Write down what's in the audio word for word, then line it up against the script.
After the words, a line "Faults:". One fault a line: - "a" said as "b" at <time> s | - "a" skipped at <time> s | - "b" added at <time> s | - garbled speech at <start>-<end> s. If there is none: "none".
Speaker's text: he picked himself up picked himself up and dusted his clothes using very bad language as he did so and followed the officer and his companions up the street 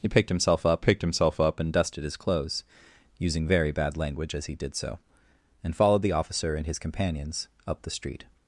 he picked himself up picked himself up and dusted his clothes using very bad language as he did so and followed the officer and his companions up the street
Faults:
none